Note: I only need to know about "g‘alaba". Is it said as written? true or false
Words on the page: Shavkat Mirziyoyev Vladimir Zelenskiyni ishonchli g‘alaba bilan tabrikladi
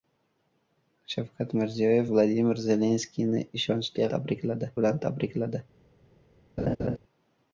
false